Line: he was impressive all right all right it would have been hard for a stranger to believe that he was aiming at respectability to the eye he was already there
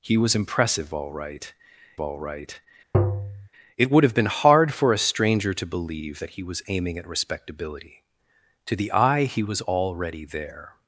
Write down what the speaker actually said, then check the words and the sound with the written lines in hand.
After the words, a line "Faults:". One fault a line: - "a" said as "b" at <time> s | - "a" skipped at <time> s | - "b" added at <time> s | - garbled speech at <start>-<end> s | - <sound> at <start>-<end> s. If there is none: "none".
he was impressive all right all right it would have been hard for a stranger to believe that he was aiming at respectability to the eye he was already there
Faults:
- tap at 2.9-3.5 s